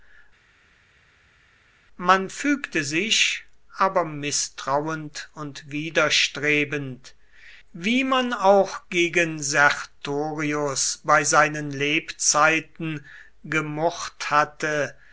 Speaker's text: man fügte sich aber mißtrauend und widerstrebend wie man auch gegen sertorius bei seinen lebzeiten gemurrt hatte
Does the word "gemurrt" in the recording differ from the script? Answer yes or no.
no